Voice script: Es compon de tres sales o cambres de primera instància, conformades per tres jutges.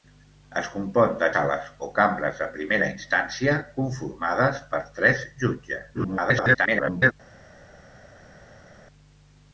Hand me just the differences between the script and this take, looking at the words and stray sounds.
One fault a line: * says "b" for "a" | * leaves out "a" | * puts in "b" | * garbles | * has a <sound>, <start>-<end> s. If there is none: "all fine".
* leaves out "tres"
* garbles